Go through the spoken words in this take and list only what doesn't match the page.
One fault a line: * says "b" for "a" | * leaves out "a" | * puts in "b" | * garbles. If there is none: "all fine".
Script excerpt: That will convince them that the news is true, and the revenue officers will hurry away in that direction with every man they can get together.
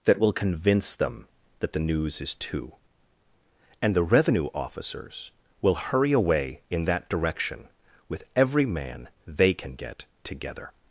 * says "two" for "true"